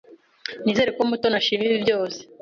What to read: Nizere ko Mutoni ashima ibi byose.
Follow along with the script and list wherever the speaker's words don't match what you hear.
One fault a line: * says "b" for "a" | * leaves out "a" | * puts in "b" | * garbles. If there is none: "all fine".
all fine